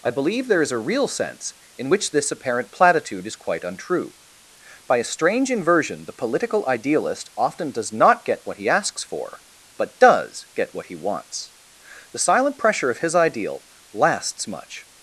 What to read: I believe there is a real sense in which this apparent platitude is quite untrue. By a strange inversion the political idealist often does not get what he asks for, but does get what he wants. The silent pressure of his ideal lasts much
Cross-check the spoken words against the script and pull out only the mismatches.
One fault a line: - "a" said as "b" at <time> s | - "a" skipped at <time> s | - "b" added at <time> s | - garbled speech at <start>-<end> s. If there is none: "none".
none